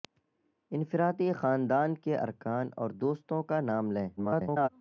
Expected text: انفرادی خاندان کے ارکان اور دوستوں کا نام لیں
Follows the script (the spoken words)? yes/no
no